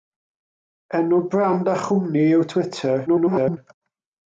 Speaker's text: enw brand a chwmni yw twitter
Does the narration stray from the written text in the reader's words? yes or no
yes